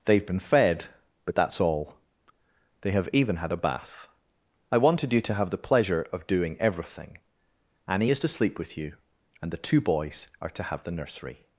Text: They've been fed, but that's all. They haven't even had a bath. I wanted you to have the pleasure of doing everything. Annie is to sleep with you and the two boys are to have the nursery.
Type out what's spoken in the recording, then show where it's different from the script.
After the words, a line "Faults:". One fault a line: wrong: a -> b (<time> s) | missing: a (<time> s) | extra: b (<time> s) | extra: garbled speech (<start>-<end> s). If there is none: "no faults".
They've been fed, but that's all. They have even had a bath. I wanted you to have the pleasure of doing everything. Annie is to sleep with you and the two boys are to have the nursery.
Faults:
wrong: haven't -> have (2.9 s)